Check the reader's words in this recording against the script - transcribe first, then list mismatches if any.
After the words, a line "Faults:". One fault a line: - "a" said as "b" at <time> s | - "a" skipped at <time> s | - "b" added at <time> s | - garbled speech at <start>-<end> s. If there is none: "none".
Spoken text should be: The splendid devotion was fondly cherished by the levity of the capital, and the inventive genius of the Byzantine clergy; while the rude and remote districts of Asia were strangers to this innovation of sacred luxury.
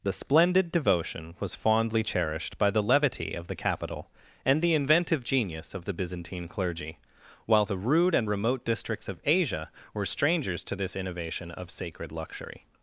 The splendid devotion was fondly cherished by the levity of the capital, and the inventive genius of the Byzantine clergy; while the rude and remote districts of Asia were strangers to this innovation of sacred luxury.
Faults:
none